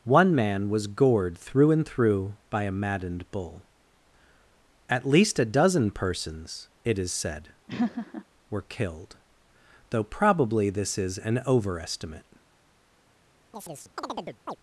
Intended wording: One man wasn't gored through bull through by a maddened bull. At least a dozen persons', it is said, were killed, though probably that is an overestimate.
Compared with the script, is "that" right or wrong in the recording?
wrong